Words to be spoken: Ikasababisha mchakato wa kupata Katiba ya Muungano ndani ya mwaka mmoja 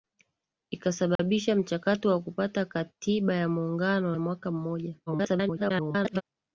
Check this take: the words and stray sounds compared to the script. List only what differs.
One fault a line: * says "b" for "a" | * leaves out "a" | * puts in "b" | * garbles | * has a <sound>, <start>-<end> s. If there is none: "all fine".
* has a dropout, 1.2-1.2 s
* leaves out "ndani"
* garbles